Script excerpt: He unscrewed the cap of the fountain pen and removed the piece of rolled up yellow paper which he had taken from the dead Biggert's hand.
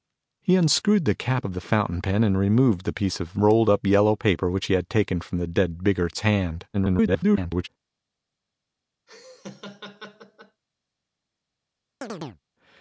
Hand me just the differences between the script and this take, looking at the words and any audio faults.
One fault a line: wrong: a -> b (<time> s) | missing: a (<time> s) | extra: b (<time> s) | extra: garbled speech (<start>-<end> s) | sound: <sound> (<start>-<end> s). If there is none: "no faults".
extra: garbled speech (6.7-7.7 s)
sound: laugh (9.1-10.6 s)
sound: chirp (12.0-12.4 s)